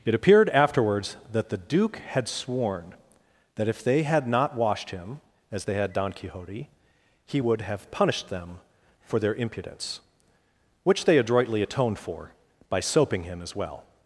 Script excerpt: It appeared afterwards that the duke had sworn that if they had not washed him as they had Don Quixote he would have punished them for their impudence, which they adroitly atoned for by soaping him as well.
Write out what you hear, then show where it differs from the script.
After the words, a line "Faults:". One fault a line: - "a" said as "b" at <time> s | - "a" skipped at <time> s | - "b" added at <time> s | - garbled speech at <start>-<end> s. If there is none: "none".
It appeared afterwards that the duke had sworn that if they had not washed him as they had Don Quixote he would have punished them for their impudence, which they adroitly atoned for by soaping him as well.
Faults:
none